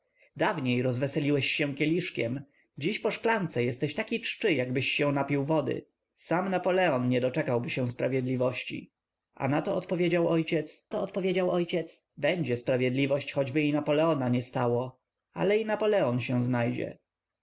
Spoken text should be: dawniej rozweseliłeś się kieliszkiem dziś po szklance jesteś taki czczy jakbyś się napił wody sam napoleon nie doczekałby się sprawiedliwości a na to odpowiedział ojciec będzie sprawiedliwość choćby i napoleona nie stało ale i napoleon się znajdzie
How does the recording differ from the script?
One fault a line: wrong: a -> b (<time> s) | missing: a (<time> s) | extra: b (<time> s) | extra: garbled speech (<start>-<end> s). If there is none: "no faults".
extra: to odpowiedział ojciec (10.9 s)